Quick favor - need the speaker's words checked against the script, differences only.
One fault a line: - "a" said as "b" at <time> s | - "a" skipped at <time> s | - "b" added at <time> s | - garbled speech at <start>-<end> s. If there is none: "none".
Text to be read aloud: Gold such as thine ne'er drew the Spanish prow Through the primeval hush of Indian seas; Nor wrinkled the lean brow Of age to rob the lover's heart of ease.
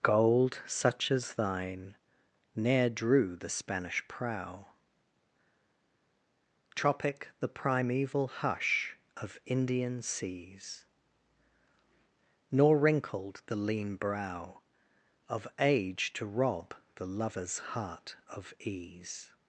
- "Through" said as "Tropic" at 6.7 s